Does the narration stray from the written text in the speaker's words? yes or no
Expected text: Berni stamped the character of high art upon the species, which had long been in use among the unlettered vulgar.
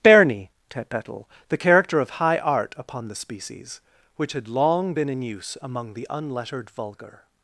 yes